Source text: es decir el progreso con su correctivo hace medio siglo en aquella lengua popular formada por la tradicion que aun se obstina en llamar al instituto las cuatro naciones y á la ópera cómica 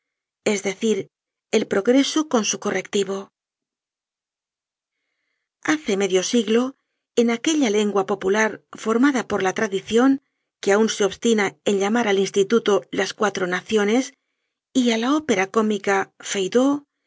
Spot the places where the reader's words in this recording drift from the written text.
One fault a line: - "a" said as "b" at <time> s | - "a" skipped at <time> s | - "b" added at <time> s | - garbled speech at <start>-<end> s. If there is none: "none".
none